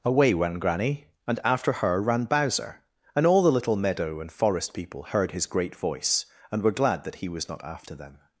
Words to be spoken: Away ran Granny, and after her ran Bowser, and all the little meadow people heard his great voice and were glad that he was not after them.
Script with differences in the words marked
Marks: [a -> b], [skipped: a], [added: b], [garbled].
Away ran Granny, and after her ran Bowser, and all the little meadow [added: and forest] people heard his great voice and were glad that he was not after them.